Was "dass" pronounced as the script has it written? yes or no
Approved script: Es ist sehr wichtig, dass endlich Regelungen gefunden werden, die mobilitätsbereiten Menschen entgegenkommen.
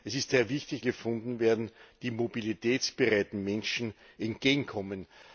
no